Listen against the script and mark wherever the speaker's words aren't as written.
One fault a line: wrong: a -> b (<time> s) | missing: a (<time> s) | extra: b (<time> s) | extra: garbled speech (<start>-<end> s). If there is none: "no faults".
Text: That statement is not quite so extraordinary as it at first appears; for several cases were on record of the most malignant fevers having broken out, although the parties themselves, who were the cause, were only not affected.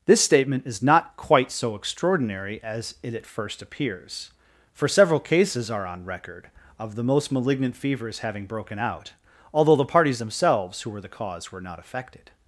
wrong: That -> This (0.1 s)
wrong: were -> are (5.7 s)
missing: only (11.6 s)